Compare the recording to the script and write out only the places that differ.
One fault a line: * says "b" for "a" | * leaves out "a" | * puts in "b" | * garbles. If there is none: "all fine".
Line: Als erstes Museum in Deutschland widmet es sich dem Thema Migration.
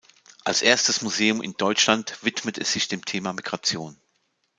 all fine